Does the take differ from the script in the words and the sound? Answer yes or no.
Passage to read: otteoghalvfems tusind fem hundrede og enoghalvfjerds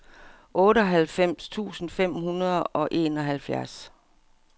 no